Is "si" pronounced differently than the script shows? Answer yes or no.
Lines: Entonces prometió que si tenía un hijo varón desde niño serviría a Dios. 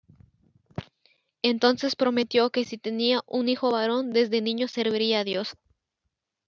no